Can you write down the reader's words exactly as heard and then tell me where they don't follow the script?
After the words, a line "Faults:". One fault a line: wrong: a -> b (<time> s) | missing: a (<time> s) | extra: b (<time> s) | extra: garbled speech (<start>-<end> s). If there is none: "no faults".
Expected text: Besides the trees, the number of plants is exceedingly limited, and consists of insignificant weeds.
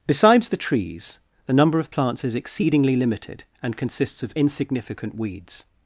Besides the trees, the number of plants is exceedingly limited, and consists of insignificant weeds.
Faults:
no faults